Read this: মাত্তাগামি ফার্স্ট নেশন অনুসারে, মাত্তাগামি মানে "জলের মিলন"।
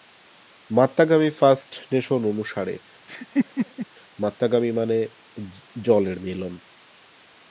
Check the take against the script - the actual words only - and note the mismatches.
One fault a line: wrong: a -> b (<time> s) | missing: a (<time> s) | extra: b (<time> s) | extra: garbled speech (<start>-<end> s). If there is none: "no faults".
no faults